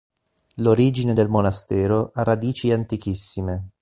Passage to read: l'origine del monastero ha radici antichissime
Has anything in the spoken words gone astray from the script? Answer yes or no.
no